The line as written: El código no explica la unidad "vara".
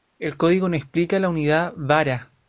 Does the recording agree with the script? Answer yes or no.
yes